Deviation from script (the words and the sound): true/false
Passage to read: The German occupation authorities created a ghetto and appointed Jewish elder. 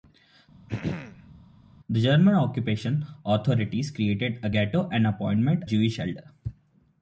true